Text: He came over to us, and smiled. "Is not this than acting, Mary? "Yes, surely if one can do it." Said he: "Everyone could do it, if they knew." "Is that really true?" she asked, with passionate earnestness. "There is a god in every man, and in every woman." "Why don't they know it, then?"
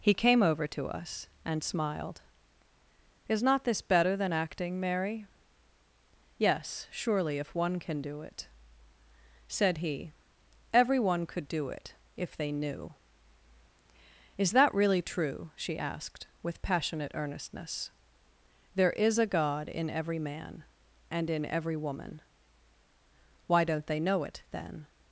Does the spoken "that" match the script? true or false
true